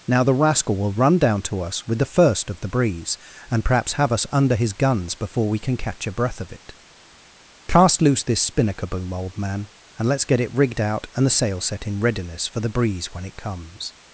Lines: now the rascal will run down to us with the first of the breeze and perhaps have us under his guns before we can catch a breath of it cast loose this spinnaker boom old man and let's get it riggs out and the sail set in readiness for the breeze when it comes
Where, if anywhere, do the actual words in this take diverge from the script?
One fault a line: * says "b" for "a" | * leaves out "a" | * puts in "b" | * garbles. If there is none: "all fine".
* says "rigged" for "riggs"